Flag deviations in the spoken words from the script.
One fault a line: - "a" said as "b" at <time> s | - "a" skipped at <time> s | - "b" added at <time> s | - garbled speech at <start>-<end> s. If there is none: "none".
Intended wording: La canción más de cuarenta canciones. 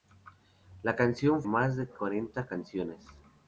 none